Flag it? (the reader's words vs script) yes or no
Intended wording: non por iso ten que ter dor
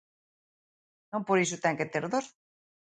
no